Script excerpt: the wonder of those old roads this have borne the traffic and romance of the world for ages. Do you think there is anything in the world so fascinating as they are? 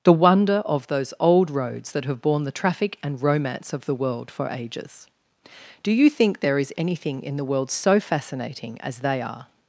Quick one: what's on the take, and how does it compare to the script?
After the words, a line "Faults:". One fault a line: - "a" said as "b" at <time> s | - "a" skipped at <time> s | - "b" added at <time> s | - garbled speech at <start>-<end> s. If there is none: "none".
the wonder of those old roads that have borne the traffic and romance of the world for ages. Do you think there is anything in the world so fascinating as they are?
Faults:
- "this" said as "that" at 1.9 s